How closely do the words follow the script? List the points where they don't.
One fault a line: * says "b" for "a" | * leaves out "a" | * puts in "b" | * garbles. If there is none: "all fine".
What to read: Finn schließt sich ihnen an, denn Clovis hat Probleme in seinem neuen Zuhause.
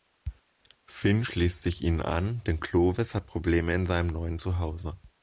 all fine